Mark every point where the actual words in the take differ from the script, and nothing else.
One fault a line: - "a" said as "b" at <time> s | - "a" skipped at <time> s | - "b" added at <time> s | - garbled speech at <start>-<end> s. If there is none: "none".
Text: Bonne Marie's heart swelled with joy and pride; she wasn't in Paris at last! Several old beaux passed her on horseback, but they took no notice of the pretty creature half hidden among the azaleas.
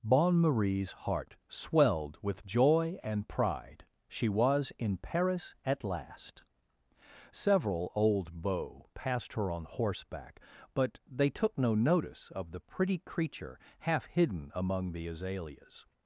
- "wasn't" said as "was" at 4.3 s